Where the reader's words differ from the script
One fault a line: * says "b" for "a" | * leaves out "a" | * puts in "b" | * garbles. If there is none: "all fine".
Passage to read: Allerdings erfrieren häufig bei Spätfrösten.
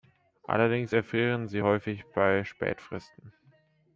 * puts in "sie"